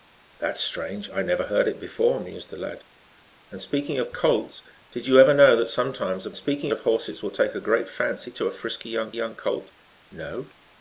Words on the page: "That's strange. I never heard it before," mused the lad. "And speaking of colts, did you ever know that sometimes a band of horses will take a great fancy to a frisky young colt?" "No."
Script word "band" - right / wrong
wrong